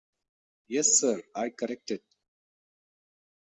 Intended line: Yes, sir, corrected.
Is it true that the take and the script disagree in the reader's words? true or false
true